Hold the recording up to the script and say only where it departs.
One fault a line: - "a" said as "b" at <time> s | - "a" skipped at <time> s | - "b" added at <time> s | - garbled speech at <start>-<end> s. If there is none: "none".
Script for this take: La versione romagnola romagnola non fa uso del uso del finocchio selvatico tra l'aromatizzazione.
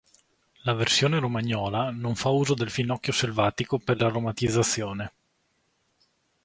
- "romagnola" skipped at 1.9 s
- "uso del" skipped at 2.7 s
- "tra" said as "per" at 3.8 s